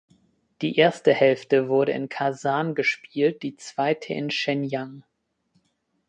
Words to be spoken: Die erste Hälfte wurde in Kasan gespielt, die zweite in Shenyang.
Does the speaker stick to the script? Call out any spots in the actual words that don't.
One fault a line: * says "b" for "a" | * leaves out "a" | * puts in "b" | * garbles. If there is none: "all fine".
all fine